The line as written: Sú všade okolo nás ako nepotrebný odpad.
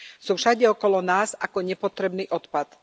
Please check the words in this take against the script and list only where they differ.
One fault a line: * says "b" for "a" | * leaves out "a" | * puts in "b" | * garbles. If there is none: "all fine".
all fine